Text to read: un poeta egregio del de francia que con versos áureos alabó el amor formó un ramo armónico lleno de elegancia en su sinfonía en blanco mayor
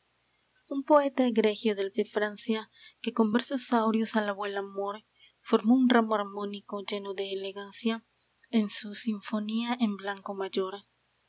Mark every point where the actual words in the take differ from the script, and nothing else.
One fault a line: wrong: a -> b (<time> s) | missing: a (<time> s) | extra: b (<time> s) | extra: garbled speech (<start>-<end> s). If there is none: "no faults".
no faults